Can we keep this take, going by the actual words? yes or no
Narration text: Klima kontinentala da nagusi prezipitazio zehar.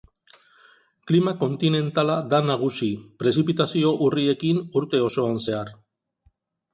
no